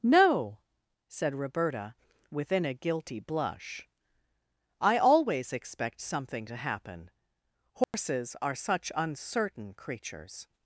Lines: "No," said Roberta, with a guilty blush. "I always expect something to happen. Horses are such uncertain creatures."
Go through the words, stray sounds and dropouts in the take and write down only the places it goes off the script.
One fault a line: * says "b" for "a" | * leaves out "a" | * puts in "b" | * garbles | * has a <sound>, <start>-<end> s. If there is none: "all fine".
* says "within" for "with"
* has a dropout, 7.8-7.9 s